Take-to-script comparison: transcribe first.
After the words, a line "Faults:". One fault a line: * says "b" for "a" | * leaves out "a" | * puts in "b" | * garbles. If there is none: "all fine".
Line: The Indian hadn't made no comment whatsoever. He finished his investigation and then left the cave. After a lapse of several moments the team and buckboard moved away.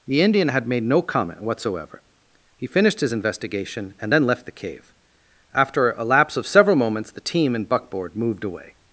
The Indian had made no comment whatsoever. He finished his investigation and then left the cave. After a lapse of several moments the team and buckboard moved away.
Faults:
* says "had" for "hadn't"